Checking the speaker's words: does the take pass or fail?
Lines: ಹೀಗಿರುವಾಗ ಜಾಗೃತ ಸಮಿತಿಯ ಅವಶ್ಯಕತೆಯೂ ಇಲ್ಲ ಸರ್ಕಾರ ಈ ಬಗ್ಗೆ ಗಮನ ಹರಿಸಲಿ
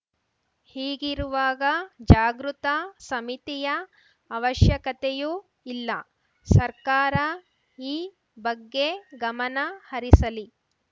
pass